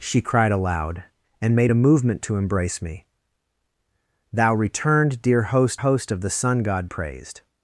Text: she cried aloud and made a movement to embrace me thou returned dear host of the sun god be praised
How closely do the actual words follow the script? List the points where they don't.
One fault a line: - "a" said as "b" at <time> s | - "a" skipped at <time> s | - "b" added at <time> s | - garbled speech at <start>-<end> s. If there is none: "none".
- "host" added at 5.7 s
- "be" skipped at 6.9 s